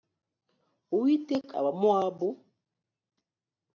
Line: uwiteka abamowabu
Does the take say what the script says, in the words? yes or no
yes